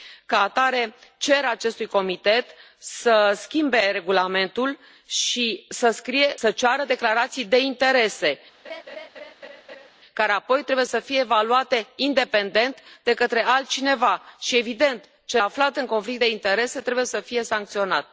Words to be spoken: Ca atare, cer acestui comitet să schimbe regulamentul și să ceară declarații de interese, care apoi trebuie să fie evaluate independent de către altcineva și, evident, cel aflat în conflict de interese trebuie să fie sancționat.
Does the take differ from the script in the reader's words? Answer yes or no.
no